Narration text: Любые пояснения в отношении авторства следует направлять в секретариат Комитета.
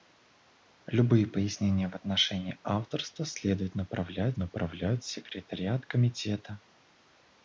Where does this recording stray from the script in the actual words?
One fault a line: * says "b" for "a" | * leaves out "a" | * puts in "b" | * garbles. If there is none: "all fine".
* puts in "направлять"